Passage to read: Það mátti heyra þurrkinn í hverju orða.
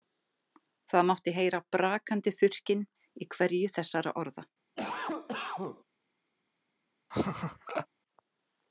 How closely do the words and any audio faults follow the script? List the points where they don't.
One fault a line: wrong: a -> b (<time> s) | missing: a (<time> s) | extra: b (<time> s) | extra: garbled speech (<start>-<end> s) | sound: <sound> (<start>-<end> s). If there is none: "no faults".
extra: brakandi (1.8 s)
extra: þessara (3.8 s)
sound: cough (4.7-5.8 s)
sound: laugh (7.1-7.9 s)